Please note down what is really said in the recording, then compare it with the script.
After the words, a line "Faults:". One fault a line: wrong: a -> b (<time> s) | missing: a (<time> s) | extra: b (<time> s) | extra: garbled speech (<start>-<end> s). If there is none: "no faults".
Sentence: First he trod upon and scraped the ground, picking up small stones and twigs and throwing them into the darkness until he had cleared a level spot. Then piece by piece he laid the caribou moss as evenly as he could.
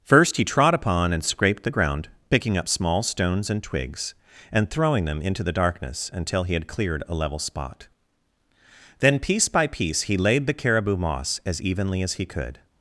First he trod upon and scraped the ground, picking up small stones and twigs and throwing them into the darkness until he had cleared a level spot. Then piece by piece he laid the caribou moss as evenly as he could.
Faults:
no faults